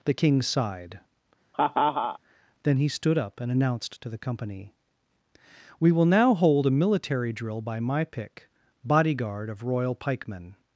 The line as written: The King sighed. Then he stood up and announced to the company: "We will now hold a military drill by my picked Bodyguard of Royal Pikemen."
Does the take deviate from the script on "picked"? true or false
true